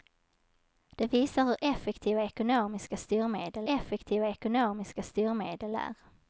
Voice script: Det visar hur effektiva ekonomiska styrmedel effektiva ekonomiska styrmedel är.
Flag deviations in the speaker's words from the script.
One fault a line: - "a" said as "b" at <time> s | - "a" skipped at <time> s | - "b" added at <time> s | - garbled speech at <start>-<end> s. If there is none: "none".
none